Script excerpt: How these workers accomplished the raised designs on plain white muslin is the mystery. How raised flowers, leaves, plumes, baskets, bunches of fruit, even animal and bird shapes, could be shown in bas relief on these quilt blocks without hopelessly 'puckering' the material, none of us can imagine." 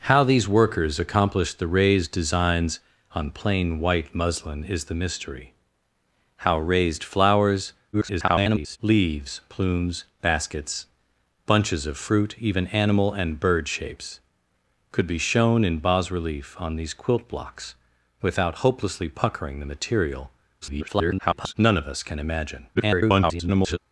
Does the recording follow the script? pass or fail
fail